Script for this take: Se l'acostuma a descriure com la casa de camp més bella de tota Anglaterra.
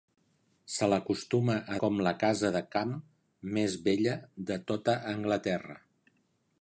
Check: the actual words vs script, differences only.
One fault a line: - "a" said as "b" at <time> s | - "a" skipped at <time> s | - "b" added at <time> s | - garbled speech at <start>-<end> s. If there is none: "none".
- "descriure" skipped at 1.8 s